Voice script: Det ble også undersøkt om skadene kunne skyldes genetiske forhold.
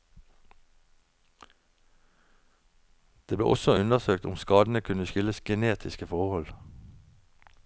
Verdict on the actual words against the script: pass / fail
pass